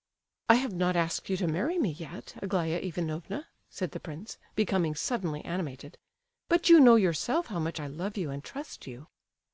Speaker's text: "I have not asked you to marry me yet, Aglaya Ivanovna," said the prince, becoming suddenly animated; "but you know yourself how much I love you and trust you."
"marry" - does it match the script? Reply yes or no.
yes